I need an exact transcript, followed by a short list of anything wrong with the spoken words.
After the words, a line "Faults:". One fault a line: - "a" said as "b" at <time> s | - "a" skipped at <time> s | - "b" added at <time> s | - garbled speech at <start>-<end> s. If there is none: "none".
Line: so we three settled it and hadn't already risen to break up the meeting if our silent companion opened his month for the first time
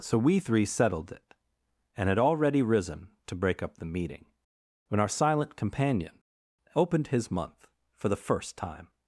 so we three settled it and had already risen to break up the meeting when our silent companion opened his month for the first time
Faults:
- "hadn't" said as "had" at 2.1 s
- "if" said as "when" at 4.9 s